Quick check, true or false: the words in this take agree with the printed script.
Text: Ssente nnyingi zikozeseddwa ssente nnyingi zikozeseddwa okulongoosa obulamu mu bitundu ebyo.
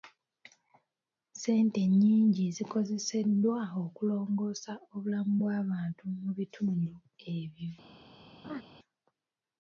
false